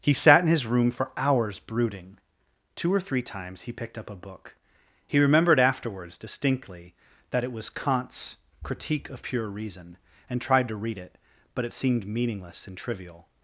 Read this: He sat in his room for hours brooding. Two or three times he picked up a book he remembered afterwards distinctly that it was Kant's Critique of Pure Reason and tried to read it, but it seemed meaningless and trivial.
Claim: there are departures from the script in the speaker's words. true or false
false